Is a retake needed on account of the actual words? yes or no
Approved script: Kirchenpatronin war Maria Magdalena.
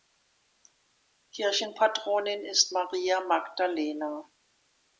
yes